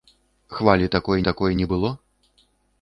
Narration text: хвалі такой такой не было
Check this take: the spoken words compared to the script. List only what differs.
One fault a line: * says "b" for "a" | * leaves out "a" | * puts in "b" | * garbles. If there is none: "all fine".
all fine